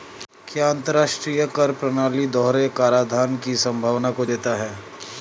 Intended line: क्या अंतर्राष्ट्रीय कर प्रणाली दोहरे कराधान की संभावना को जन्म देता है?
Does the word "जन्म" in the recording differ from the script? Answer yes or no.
yes